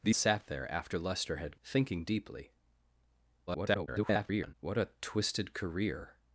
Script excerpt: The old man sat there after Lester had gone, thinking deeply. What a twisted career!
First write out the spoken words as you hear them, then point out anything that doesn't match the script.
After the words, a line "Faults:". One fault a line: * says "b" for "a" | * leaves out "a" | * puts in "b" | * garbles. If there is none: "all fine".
The sat there after Lester had thinking deeply. [garbled] What a twisted career!
Faults:
* leaves out "old man"
* leaves out "gone"
* garbles